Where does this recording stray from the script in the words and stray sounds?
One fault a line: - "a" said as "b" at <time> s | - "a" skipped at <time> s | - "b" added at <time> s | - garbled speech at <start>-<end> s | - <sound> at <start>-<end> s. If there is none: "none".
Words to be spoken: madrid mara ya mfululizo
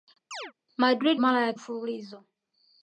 - chirp at 0.3-0.5 s